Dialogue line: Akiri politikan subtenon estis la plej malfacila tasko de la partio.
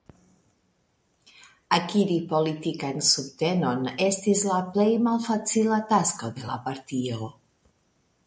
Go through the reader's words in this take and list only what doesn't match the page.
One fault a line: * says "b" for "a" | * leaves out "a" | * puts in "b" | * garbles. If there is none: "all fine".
all fine